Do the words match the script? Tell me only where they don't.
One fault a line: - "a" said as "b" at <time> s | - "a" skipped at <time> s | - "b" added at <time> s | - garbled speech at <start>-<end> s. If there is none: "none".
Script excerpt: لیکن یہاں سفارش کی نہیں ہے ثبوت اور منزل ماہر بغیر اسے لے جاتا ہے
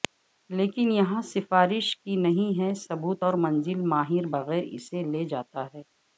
none